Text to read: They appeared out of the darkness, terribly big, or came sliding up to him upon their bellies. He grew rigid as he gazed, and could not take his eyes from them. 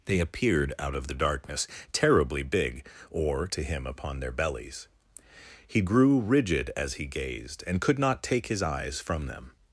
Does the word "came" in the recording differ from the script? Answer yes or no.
yes